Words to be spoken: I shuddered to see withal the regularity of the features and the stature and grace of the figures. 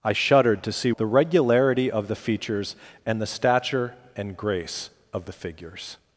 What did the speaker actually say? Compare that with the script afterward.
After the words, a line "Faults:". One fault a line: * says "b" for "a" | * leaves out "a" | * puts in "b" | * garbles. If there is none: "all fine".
I shuddered to see the regularity of the features and the stature and grace of the figures.
Faults:
* leaves out "withal"